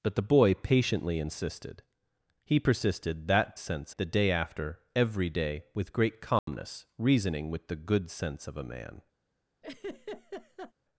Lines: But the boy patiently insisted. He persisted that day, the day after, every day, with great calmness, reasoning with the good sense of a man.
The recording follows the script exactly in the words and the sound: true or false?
false